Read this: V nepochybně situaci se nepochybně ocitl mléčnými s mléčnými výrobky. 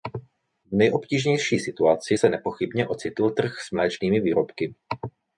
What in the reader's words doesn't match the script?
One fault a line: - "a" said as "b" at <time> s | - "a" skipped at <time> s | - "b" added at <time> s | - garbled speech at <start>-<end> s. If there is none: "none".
- "nepochybně" said as "nejobtížnější" at 0.7 s
- "mléčnými" said as "trh" at 3.3 s